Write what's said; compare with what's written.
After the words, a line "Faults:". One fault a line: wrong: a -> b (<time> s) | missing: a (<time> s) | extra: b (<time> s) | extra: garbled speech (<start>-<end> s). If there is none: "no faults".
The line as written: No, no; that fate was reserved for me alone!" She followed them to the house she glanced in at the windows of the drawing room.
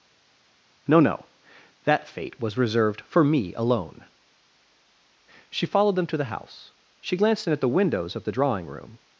No, no; that fate was reserved for me alone!" She followed them to the house she glanced in at the windows of the drawing room.
Faults:
no faults